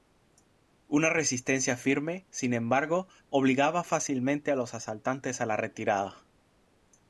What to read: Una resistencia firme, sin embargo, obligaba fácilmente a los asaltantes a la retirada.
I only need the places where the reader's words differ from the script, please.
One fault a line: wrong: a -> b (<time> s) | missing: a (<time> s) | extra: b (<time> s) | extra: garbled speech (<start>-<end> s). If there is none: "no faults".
no faults